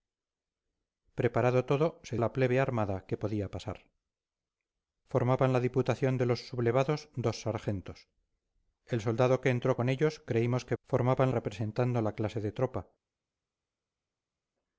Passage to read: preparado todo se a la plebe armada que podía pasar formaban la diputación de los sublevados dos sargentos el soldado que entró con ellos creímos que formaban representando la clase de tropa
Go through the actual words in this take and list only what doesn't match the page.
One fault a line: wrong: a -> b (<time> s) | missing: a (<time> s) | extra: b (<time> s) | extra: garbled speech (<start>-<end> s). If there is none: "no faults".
no faults